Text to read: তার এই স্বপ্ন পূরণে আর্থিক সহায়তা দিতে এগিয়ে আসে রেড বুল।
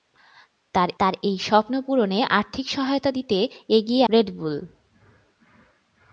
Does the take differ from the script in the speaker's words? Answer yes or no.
yes